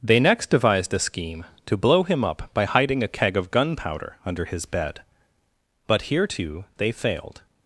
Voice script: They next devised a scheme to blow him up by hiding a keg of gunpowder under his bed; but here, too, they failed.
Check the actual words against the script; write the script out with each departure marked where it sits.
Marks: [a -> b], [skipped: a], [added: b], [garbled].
They next devised a scheme to blow him up by hiding a keg of gunpowder under his bed; but here, too, they failed.